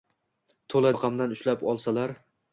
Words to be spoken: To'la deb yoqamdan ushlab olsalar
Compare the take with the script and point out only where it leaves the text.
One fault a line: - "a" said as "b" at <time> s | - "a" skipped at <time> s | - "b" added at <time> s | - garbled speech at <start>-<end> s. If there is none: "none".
- "deb" skipped at 0.9 s